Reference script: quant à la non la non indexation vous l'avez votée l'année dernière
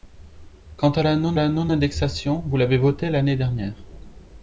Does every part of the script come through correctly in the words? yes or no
yes